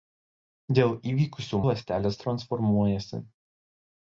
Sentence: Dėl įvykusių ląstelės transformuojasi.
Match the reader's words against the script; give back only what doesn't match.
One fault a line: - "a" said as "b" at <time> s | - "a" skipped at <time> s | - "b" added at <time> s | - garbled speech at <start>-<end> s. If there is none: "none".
none